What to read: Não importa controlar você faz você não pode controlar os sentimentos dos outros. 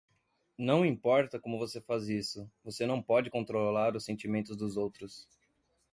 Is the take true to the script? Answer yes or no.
no